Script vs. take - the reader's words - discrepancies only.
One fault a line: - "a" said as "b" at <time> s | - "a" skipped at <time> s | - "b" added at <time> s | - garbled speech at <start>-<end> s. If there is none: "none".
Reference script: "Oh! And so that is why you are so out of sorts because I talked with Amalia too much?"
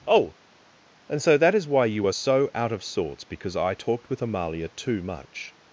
none